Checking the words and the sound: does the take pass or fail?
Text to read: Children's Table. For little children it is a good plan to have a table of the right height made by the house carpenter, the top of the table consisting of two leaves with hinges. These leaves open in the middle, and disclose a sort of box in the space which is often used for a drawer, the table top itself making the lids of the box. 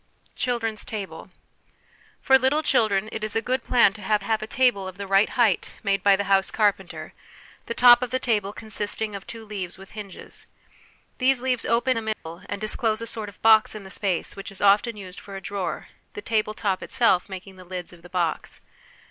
fail